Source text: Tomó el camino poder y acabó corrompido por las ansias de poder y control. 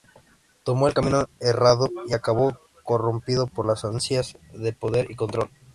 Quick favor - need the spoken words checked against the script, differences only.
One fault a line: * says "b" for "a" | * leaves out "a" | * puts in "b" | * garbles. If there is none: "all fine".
* says "errado" for "poder"